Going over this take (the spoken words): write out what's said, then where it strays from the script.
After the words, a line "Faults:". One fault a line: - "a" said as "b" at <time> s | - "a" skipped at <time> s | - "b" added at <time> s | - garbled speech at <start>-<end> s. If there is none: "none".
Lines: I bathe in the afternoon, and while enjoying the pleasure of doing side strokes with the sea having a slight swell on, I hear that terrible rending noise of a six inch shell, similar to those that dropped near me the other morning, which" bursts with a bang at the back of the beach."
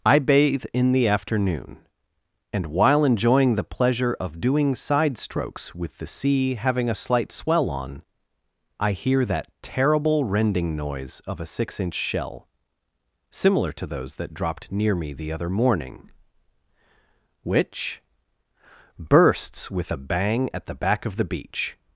I bathe in the afternoon, and while enjoying the pleasure of doing side strokes with the sea having a slight swell on, I hear that terrible rending noise of a six inch shell, similar to those that dropped near me the other morning, which" bursts with a bang at the back of the beach."
Faults:
none